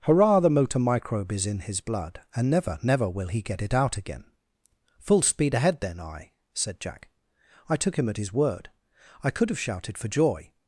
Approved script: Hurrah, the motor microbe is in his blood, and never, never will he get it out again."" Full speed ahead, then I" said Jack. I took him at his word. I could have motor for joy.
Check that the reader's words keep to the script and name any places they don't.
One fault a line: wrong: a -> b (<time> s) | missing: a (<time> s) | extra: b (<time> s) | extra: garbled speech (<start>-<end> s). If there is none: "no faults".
wrong: motor -> shouted (9.6 s)